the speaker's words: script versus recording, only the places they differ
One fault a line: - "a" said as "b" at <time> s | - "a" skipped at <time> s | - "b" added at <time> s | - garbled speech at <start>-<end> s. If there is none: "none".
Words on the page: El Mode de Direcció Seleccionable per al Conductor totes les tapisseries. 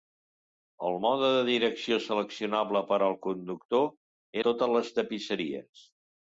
none